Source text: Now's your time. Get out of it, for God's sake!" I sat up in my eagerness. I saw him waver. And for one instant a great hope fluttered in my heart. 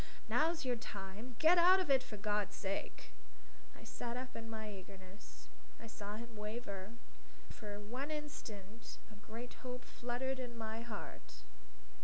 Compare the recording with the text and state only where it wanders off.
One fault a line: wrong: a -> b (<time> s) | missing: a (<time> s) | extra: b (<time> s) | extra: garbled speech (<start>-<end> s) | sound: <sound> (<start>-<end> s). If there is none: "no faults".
missing: And (6.9 s)